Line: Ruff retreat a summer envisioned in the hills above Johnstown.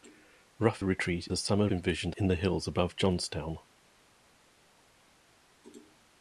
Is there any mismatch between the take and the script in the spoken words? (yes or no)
no